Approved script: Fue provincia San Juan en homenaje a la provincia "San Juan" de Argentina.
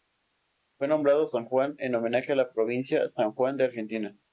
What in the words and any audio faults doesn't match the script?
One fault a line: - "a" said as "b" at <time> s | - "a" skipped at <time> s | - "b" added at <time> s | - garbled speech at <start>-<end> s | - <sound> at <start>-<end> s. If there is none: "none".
- "provincia" said as "nombrado" at 0.9 s